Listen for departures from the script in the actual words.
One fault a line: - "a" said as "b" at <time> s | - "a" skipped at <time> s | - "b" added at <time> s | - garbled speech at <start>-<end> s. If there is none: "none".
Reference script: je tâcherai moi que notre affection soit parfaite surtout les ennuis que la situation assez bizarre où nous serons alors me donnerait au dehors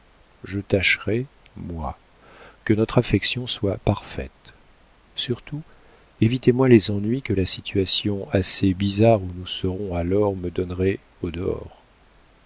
- "évitez moi" added at 6.2 s